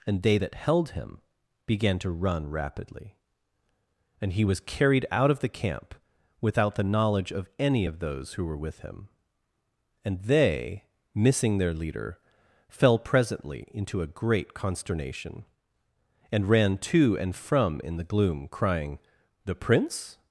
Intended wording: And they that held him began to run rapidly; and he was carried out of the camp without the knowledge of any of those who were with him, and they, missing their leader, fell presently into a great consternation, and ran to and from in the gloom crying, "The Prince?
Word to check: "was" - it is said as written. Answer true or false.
true